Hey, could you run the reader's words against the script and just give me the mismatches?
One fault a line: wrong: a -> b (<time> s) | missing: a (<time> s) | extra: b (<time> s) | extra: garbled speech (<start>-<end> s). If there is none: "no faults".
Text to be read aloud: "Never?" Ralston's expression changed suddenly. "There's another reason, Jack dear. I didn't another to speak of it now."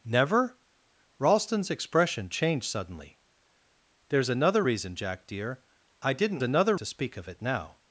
no faults